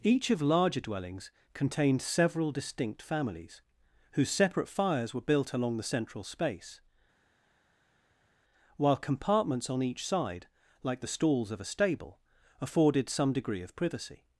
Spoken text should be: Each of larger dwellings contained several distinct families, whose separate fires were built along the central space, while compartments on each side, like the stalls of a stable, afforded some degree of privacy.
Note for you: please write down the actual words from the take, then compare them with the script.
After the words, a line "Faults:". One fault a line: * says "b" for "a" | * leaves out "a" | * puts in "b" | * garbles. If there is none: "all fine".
Each of larger dwellings contained several distinct families, whose separate fires were built along the central space, while compartments on each side, like the stalls of a stable, afforded some degree of privacy.
Faults:
all fine